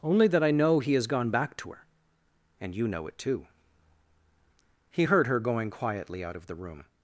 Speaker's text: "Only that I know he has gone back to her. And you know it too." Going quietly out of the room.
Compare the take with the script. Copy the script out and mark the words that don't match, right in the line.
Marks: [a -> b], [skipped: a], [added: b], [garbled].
"Only that I know he has gone back to her. And you know it too." [added: He heard her] Going quietly out of the room.